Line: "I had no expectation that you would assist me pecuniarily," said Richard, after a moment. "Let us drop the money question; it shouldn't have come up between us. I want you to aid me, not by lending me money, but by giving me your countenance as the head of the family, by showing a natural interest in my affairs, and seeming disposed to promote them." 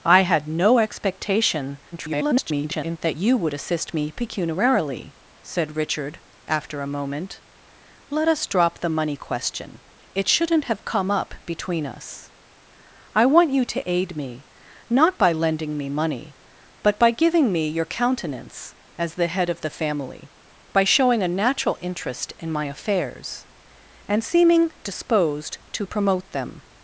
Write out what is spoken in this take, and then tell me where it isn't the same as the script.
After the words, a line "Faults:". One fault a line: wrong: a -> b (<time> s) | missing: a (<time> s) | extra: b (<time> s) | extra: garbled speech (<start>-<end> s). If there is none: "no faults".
"I had no expectation [garbled] that you would assist me pecuniarily," said Richard, after a moment. "Let us drop the money question; it shouldn't have come up between us. I want you to aid me, not by lending me money, but by giving me your countenance as the head of the family, by showing a natural interest in my affairs, and seeming disposed to promote them."
Faults:
extra: garbled speech (1.9-3.0 s)